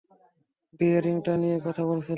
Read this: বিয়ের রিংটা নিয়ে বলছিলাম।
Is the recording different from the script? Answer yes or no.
yes